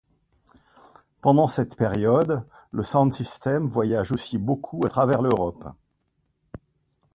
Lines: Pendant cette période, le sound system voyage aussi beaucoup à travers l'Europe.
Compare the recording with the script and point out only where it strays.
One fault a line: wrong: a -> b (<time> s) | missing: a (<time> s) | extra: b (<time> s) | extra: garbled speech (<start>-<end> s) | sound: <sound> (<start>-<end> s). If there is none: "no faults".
no faults